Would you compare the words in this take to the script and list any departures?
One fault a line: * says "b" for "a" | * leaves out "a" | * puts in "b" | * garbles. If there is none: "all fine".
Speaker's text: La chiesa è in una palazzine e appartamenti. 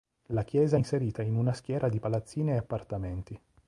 * puts in "inserita"
* puts in "schiera di"